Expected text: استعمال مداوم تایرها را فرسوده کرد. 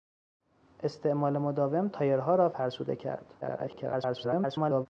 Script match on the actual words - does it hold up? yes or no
no